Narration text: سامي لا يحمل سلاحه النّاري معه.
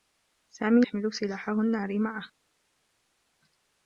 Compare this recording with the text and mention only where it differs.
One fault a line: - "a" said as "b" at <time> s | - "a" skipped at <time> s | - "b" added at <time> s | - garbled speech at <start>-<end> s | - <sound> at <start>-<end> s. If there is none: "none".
- "لا" skipped at 0.8 s